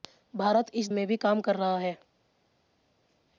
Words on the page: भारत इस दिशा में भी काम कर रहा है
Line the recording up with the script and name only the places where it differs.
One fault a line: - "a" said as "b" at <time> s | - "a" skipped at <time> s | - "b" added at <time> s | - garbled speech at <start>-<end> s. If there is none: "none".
- "दिशा" skipped at 0.9 s